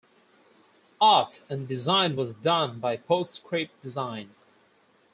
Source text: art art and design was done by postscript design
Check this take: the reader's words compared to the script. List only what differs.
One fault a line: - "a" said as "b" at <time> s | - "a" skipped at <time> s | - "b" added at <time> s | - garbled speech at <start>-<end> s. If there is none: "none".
- "art" skipped at 1.4 s